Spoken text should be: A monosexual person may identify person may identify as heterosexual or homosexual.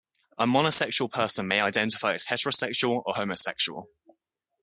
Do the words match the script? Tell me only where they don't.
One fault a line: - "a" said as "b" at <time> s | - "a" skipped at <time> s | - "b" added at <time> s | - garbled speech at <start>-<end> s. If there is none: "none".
- "person may identify" skipped at 2.1 s